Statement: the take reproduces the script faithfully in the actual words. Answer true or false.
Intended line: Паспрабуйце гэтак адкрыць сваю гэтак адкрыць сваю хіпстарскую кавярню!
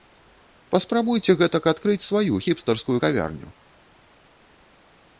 false